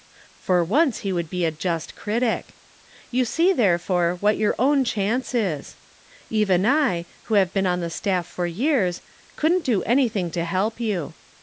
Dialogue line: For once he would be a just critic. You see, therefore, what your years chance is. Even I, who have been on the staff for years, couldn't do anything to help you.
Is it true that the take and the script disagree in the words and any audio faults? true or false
true